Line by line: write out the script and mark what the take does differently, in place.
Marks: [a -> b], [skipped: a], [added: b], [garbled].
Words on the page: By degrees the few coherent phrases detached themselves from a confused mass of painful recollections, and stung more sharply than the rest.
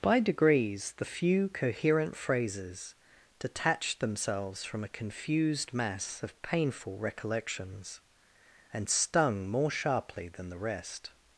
By degrees the few coherent phrases detached themselves from a confused mass of painful recollections, and stung more sharply than the rest.